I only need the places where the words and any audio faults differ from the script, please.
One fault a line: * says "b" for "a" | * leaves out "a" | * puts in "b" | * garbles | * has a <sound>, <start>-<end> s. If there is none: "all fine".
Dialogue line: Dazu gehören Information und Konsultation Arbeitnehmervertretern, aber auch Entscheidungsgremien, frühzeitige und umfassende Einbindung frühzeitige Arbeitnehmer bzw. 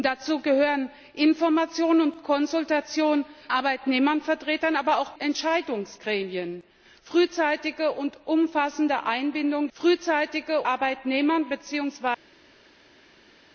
all fine